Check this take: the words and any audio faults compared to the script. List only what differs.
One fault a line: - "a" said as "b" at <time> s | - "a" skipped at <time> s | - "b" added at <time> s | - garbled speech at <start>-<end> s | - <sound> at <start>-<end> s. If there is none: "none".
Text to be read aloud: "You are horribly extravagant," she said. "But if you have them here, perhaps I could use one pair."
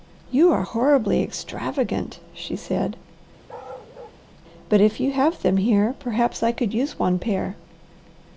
- bark at 3.5-4.2 s